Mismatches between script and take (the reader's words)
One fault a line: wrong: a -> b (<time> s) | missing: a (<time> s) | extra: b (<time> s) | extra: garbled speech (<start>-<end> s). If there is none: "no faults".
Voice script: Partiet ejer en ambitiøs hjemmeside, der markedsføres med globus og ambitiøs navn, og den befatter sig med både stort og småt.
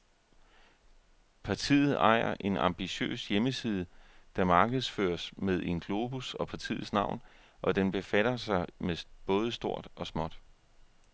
extra: en (5.6 s)
wrong: ambitiøs -> partiets (6.5 s)